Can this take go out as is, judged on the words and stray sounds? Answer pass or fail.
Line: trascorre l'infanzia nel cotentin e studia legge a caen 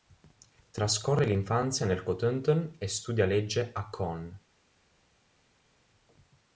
pass